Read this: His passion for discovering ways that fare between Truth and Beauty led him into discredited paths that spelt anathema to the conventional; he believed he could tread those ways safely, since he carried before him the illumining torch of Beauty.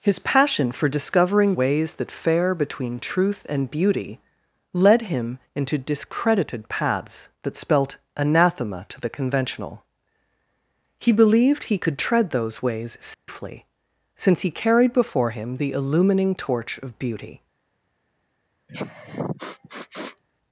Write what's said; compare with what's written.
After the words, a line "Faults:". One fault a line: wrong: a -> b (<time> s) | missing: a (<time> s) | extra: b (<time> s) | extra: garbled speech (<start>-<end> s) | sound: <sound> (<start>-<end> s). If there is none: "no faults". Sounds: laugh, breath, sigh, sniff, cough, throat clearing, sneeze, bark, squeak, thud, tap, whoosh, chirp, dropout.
His passion for discovering ways that fare between Truth and Beauty led him into discredited paths that spelt anathema to the conventional; he believed he could tread those ways safely, since he carried before him the illumining torch of Beauty.
Faults:
sound: dropout (13.1-13.3 s)
sound: sniff (18.7-20.2 s)